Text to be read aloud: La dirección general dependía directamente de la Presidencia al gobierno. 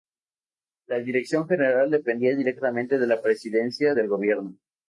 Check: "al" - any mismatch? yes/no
yes